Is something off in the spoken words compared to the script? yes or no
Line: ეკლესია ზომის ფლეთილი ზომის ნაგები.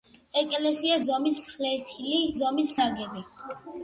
no